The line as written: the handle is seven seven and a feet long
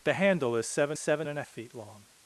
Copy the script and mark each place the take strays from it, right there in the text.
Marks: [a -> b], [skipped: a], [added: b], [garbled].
the handle is seven seven and a feet long